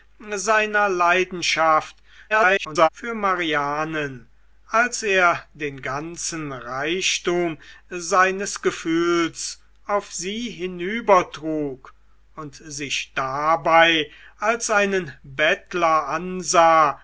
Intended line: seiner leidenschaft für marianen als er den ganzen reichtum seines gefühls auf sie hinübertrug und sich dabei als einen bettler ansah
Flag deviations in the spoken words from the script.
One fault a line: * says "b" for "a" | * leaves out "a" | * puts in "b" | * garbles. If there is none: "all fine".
* garbles